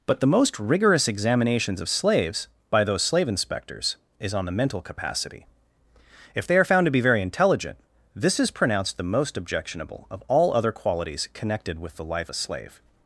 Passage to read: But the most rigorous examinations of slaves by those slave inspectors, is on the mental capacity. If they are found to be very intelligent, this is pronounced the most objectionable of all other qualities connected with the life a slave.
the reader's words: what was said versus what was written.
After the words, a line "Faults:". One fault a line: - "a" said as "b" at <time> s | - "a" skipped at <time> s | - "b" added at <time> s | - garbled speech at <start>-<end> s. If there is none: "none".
But the most rigorous examinations of slaves by those slave inspectors, is on the mental capacity. If they are found to be very intelligent, this is pronounced the most objectionable of all other qualities connected with the life a slave.
Faults:
none